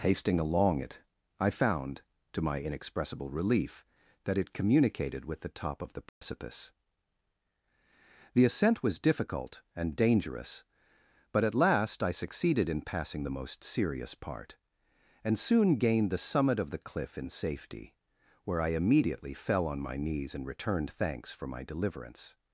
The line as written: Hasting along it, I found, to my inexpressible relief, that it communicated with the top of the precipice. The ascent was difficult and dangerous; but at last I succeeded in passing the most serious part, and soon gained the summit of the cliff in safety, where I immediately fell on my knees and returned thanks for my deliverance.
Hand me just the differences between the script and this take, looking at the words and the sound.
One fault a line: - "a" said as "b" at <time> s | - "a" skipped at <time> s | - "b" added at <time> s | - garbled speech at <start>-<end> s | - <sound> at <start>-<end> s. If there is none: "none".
- dropout at 6.1-6.2 s